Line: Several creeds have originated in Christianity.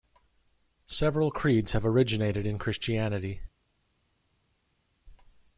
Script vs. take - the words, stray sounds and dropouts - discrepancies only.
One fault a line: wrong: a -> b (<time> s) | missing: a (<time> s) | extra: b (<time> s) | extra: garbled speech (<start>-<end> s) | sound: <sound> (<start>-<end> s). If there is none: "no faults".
no faults